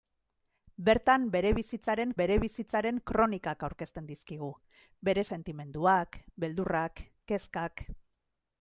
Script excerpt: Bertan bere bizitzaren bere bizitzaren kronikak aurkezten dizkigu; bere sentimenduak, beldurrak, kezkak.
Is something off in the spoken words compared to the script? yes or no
no